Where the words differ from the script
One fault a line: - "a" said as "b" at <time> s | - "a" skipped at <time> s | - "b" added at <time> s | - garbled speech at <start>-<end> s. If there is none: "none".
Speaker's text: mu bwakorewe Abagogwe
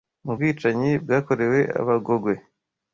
- "bwicanyi" added at 0.3 s